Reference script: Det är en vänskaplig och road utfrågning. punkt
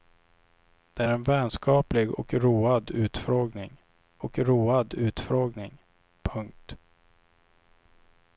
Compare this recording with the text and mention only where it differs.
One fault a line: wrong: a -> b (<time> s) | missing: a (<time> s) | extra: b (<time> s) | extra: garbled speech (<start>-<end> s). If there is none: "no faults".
missing: är (1.0 s)
extra: och road utfrågning (4.2 s)